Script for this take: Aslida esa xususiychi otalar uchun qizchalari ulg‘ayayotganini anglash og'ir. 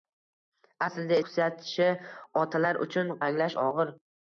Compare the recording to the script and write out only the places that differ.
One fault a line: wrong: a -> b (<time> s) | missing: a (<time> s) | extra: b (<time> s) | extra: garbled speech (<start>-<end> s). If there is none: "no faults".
missing: esa (1.2 s)
missing: qizchalari ulg‘ayayotganini (3.1 s)